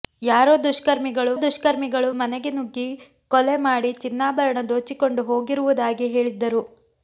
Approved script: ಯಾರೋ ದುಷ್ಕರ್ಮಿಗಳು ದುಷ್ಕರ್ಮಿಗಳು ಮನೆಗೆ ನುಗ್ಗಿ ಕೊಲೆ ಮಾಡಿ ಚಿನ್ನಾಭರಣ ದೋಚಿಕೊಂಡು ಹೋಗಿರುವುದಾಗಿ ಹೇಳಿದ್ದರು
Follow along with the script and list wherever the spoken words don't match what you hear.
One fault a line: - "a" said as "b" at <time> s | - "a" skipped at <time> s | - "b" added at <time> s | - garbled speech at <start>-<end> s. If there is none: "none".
none